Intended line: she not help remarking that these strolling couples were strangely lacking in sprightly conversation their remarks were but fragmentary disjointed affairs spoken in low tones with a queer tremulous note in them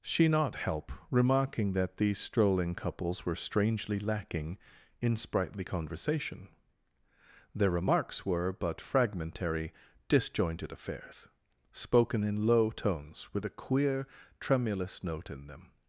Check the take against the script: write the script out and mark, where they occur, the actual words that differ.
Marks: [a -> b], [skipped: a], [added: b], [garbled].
she not help remarking that these strolling couples were strangely lacking in sprightly conversation their remarks were but fragmentary disjointed affairs spoken in low tones with a queer tremulous note in them